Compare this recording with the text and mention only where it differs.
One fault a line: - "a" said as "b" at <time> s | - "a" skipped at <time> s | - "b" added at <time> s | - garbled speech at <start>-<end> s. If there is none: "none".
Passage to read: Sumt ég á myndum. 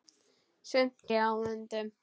none